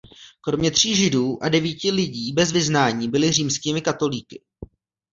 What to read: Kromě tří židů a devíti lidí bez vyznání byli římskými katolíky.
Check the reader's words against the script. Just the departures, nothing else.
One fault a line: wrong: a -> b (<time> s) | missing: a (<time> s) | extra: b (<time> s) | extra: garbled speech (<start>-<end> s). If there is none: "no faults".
no faults